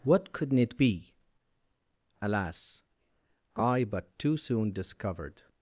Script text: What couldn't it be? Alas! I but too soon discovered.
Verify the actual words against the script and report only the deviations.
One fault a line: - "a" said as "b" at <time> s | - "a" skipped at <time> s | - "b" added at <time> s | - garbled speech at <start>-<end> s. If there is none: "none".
none